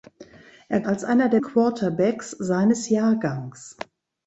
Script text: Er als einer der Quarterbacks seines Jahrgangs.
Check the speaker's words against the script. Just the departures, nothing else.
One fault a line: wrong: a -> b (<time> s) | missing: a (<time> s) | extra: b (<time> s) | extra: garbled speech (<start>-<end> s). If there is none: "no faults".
no faults